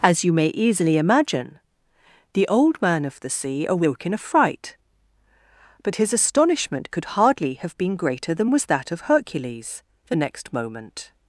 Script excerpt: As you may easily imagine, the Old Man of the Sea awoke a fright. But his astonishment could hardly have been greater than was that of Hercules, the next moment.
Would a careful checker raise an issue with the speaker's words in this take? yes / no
yes